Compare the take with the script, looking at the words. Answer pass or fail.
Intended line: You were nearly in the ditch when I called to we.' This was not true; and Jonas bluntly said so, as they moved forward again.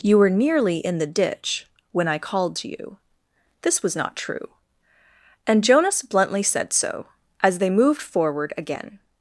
fail